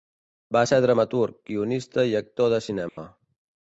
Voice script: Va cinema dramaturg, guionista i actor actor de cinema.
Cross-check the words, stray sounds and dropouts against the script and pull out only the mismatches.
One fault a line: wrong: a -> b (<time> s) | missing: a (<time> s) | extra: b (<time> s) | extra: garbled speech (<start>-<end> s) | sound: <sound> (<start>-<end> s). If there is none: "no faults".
wrong: cinema -> ser (0.7 s)
missing: actor (2.5 s)
sound: dropout (2.9-3.0 s)